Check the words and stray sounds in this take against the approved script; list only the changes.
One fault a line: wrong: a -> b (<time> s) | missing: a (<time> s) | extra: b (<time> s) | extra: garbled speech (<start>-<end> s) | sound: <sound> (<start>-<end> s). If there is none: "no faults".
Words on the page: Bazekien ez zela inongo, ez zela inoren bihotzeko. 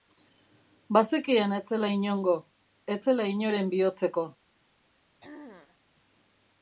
sound: throat clearing (5.2-5.8 s)